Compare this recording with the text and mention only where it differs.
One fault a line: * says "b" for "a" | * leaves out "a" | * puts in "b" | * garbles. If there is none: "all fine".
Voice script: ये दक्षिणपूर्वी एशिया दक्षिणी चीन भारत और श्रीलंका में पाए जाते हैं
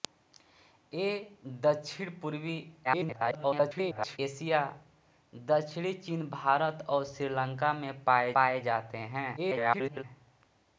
* garbles
* puts in "पाए"
* garbles